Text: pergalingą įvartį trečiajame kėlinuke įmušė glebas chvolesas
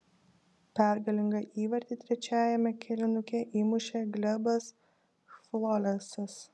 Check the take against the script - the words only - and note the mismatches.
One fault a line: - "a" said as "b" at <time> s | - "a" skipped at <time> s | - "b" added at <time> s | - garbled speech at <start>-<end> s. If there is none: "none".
none